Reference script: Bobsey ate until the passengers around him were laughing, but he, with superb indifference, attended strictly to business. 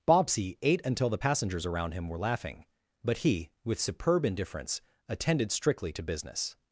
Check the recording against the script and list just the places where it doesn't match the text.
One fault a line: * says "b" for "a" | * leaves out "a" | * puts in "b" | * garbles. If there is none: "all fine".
all fine